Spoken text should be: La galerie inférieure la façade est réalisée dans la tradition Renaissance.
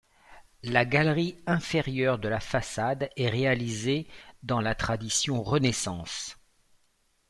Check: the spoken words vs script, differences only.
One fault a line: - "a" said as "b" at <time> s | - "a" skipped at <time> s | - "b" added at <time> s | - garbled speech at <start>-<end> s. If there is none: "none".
- "de" added at 2.2 s